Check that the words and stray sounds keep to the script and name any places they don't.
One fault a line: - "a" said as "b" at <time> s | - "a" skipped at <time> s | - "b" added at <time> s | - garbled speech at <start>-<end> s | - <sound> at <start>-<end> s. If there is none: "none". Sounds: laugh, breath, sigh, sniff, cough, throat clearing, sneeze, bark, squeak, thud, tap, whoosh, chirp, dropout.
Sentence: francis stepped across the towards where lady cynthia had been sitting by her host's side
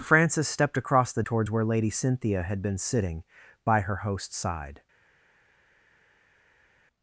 none